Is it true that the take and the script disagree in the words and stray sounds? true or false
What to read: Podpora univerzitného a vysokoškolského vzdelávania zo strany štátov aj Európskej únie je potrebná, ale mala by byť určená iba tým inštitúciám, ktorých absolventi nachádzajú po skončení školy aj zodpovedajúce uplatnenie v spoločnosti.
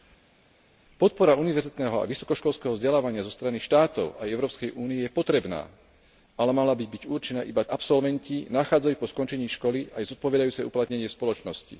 true